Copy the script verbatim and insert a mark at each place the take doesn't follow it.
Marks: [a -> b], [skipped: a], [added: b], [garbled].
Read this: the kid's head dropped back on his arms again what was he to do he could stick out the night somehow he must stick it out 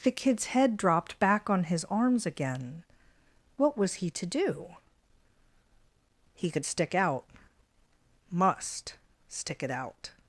the kid's head dropped back on his arms again what was he to do he could stick out [skipped: the night somehow he] must stick it out